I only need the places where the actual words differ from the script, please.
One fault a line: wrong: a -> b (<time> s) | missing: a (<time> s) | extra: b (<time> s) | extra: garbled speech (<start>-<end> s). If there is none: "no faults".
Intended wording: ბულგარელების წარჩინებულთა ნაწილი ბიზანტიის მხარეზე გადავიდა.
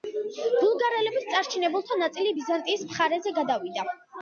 no faults